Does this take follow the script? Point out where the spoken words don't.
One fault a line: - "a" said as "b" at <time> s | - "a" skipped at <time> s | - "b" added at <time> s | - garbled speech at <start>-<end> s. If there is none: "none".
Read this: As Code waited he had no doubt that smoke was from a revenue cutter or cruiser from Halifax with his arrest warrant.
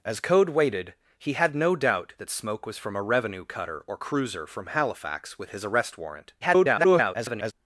- garbled speech at 6.4-7.5 s